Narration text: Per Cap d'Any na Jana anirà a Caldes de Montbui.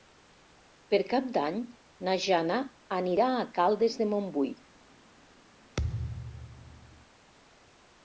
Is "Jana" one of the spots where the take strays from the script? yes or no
no